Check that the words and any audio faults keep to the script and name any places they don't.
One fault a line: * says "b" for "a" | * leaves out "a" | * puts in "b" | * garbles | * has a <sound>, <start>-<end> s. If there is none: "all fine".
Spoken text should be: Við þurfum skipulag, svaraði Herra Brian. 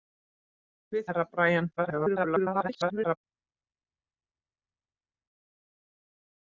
* leaves out "þurfum skipulag svaraði"
* garbles